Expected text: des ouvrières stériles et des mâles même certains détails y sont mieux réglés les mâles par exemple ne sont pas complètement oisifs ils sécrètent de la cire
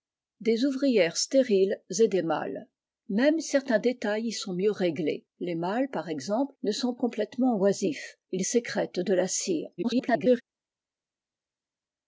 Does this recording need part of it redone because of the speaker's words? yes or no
yes